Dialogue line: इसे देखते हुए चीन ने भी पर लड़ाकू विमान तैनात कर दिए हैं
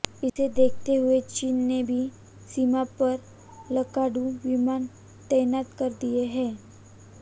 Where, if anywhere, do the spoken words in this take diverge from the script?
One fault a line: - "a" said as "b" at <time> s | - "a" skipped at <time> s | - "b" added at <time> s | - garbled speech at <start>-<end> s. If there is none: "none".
- "सीमा" added at 2.5 s